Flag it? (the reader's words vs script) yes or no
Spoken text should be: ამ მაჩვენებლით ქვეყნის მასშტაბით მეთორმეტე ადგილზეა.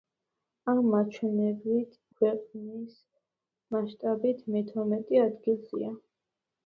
no